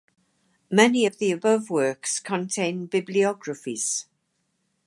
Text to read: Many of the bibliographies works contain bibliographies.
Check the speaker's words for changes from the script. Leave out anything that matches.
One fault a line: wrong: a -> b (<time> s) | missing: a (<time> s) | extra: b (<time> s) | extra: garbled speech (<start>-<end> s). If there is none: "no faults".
wrong: bibliographies -> above (1.3 s)